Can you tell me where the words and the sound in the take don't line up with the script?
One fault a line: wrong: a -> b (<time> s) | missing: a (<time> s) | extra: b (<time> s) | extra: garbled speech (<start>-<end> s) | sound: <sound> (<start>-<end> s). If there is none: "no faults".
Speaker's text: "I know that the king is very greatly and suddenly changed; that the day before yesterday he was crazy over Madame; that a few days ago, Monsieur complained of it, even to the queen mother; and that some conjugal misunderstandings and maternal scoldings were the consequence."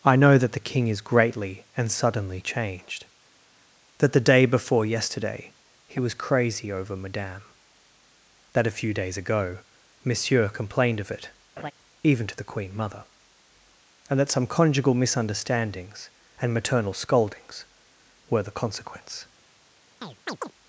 missing: very (1.0 s)
sound: laugh (11.6-11.7 s)
sound: chirp (20.0-20.5 s)